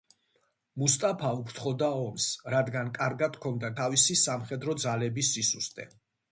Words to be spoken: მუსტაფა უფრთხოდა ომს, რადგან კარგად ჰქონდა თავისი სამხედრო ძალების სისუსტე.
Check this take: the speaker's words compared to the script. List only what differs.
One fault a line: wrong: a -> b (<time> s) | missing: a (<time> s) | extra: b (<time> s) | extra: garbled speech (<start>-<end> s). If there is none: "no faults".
no faults